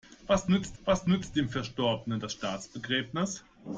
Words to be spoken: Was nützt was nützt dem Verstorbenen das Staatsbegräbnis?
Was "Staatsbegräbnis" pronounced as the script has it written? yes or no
yes